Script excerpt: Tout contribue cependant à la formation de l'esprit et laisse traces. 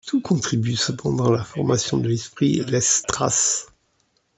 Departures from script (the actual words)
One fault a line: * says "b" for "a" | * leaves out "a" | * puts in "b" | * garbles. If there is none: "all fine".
all fine